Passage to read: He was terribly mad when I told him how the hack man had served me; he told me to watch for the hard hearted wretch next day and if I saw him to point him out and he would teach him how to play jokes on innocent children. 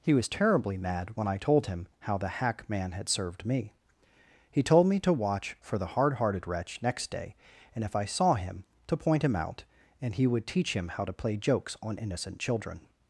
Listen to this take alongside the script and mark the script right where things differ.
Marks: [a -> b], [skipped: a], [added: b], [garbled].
He was terribly mad when I told him how the hack man had served me; he told me to watch for the hard hearted wretch next day and if I saw him to point him out and he would teach him how to play jokes on innocent children.